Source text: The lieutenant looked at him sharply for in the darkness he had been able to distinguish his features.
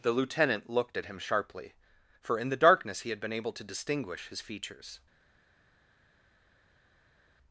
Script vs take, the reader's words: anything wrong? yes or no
no